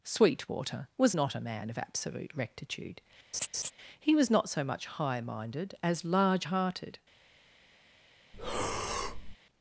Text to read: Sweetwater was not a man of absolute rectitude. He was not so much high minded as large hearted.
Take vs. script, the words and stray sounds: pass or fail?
fail